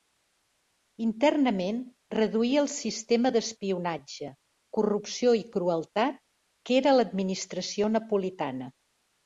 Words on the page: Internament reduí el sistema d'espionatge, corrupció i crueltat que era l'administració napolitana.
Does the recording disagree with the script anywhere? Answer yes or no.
no